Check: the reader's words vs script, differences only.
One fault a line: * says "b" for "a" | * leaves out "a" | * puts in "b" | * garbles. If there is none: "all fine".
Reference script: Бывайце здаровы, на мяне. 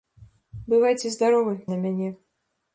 all fine